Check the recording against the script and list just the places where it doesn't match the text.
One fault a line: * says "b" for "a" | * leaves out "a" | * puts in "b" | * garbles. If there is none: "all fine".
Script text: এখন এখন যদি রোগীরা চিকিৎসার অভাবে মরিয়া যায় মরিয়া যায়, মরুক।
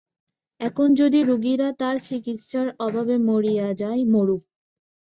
* leaves out "এখন"
* puts in "তার"
* leaves out "মরিয়া যায়"